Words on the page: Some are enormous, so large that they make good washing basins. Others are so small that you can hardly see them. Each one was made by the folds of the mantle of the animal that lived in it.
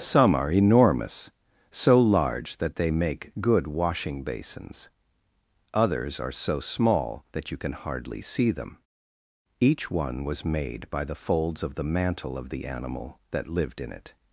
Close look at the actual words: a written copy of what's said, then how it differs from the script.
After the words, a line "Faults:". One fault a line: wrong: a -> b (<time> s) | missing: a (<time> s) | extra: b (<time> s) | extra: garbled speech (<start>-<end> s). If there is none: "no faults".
Some are enormous, so large that they make good washing basins. Others are so small that you can hardly see them. Each one was made by the folds of the mantle of the animal that lived in it.
Faults:
no faults